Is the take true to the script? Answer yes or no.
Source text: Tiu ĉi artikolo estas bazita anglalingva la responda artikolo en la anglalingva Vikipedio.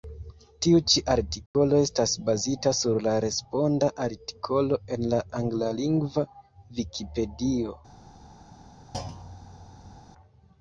no